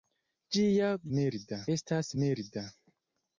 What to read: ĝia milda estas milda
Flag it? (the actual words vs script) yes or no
no